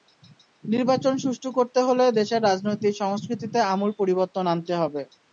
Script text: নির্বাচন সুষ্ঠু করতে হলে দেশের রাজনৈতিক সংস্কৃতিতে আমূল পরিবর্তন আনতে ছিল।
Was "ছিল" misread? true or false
true